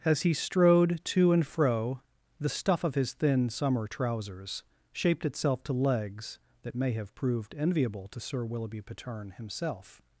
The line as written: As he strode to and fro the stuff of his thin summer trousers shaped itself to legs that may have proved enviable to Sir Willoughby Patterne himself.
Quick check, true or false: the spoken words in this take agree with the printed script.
true